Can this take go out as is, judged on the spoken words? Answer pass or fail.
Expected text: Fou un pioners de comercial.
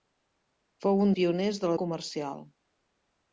pass